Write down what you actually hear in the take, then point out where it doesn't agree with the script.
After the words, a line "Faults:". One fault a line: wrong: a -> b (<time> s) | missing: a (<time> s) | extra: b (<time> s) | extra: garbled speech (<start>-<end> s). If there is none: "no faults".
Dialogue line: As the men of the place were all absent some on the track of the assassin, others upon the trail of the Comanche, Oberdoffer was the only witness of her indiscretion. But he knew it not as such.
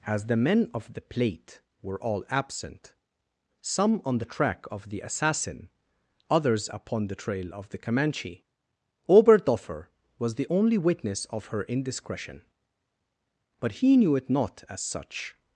As the men of the plate were all absent some on the track of the assassin, others upon the trail of the Comanche, Oberdoffer was the only witness of her indiscretion. But he knew it not as such.
Faults:
wrong: place -> plate (1.0 s)